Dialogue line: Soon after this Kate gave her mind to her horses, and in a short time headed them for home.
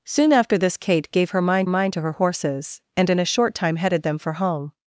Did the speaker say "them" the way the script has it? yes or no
yes